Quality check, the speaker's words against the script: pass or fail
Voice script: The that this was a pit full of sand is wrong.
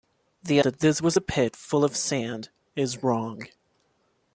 pass